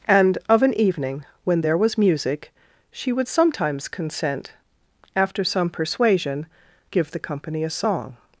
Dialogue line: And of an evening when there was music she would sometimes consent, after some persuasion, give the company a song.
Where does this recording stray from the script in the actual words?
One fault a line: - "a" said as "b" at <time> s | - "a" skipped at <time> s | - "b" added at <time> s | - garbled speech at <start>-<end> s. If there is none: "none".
none